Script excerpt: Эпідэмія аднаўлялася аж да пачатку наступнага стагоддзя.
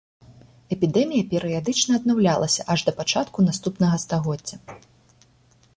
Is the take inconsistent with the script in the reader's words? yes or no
yes